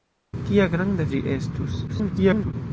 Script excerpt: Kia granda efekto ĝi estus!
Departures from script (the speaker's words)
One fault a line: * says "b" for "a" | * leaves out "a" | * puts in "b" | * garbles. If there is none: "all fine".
* leaves out "efekto"
* garbles